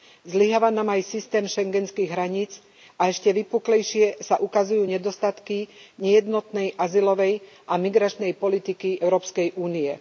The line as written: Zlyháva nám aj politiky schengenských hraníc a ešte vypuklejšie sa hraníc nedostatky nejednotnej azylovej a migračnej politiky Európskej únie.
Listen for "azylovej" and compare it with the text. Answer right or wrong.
right